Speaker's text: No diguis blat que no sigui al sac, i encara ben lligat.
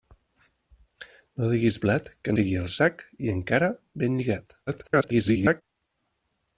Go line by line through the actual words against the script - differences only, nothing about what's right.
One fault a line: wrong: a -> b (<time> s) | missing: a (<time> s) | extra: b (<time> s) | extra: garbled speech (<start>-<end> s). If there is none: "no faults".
missing: no (2.4 s)
extra: garbled speech (4.7-5.6 s)